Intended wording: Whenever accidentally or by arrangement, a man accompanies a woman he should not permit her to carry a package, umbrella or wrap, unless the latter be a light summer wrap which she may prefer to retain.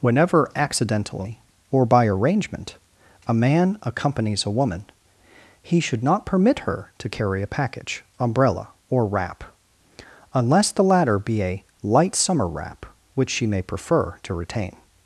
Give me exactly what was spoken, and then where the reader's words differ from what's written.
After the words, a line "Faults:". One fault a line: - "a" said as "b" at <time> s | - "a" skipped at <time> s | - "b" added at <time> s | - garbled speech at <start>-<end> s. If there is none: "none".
Whenever accidentally or by arrangement, a man accompanies a woman he should not permit her to carry a package, umbrella or wrap, unless the latter be a light summer wrap which she may prefer to retain.
Faults:
none